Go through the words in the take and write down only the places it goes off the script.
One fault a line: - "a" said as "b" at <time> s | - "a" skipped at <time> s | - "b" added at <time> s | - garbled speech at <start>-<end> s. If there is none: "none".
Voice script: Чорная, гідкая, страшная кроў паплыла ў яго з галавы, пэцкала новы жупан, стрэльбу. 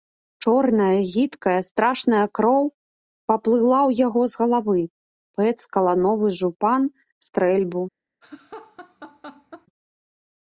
none